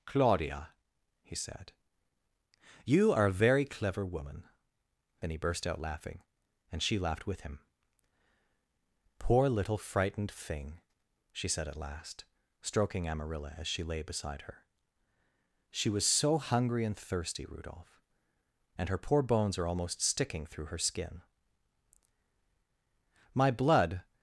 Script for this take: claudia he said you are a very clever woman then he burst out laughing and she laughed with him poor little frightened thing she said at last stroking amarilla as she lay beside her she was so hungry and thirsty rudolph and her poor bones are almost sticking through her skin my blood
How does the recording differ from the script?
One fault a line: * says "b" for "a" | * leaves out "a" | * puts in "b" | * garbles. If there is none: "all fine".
all fine